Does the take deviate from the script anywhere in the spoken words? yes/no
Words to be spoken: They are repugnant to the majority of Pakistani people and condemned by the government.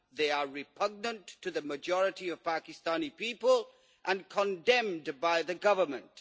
no